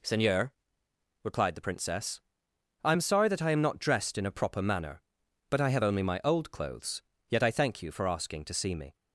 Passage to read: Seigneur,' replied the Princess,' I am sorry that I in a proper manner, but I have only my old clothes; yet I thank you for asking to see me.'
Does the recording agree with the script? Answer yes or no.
no